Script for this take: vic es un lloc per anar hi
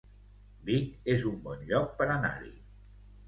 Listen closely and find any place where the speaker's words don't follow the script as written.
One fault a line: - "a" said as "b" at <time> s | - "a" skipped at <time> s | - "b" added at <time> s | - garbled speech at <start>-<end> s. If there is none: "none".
- "bon" added at 1.4 s